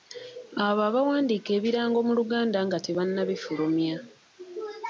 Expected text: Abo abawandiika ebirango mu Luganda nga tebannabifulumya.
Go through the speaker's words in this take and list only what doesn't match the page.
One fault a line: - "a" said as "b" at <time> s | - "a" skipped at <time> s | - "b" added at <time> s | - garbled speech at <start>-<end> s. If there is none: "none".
none